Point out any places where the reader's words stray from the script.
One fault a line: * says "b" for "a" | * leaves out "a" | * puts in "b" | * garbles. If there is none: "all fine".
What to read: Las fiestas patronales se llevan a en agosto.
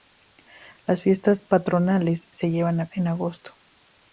all fine